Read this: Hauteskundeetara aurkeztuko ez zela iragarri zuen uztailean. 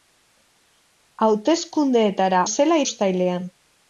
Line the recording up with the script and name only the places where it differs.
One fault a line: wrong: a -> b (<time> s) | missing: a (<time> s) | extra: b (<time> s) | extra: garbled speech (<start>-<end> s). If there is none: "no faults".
missing: aurkeztuko (2.4 s)
missing: iragarri zuen (2.8 s)